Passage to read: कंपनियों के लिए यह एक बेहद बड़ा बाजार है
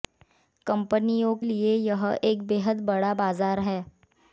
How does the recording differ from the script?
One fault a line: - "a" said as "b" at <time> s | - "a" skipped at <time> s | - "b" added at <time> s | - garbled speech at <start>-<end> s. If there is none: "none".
- "के" skipped at 1.4 s